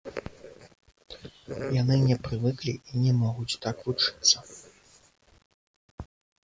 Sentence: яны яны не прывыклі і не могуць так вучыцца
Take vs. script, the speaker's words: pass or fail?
fail